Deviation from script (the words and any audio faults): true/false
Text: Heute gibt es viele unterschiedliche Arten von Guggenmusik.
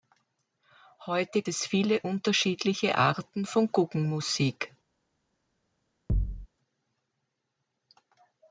true